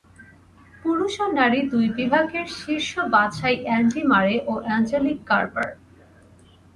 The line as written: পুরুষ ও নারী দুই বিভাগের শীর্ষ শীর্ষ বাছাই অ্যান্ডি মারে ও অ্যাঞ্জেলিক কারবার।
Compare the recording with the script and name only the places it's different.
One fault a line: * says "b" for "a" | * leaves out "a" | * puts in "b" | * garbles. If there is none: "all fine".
* leaves out "শীর্ষ"